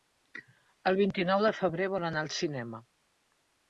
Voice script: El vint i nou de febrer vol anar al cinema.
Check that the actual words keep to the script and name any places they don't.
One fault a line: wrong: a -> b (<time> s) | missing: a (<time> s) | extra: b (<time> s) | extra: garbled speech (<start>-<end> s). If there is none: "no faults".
no faults